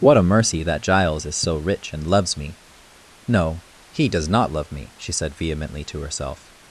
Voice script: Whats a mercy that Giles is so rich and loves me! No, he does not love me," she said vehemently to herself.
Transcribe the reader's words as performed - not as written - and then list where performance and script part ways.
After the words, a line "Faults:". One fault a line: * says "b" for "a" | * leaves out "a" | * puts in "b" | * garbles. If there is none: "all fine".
What a mercy that Giles is so rich and loves me! No, he does not love me," she said vehemently to herself.
Faults:
* says "What" for "Whats"